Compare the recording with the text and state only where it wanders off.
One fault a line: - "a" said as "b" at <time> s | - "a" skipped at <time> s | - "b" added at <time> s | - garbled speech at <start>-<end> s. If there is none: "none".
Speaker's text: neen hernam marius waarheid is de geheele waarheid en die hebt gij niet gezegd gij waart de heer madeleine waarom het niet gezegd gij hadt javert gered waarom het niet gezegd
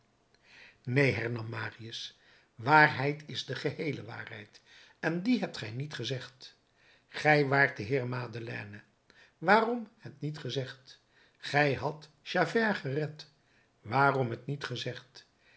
none